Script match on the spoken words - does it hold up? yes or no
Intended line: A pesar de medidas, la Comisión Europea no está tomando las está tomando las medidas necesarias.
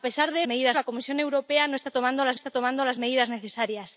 yes